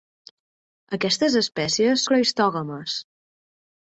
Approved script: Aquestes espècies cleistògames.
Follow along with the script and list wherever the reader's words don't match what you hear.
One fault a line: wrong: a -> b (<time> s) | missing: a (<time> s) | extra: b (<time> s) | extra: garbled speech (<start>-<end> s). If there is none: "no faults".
no faults